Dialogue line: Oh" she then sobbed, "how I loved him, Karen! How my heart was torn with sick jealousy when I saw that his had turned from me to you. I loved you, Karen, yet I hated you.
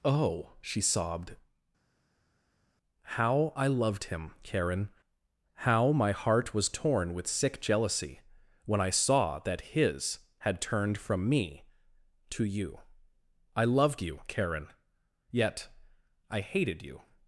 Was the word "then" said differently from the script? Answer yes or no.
yes